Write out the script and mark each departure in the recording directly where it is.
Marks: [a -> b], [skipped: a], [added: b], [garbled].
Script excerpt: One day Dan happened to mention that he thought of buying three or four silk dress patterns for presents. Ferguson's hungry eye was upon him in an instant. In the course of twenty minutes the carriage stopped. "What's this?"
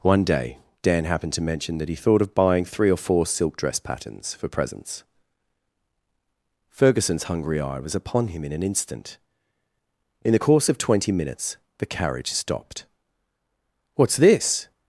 One day Dan happened to mention that he thought of buying three or four silk dress patterns for presents. Ferguson's hungry eye was upon him in an instant. In the course of twenty minutes the carriage stopped. "What's this?"